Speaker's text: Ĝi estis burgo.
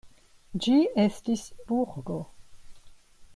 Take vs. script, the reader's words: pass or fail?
pass